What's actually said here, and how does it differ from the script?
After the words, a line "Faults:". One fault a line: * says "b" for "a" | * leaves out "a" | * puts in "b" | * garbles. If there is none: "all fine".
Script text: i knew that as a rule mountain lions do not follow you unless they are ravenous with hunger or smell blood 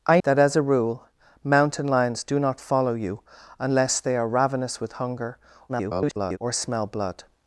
i that as a rule mountain lions do not follow you unless they are ravenous with hunger [garbled] or smell blood
Faults:
* leaves out "knew"
* garbles